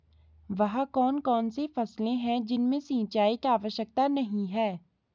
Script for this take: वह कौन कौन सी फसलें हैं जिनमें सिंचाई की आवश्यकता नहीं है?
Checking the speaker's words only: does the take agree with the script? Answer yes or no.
yes